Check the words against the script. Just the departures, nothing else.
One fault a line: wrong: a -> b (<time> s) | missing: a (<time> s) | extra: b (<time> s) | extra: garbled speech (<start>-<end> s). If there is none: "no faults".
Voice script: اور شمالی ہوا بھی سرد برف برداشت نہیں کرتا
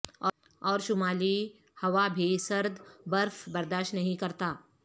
no faults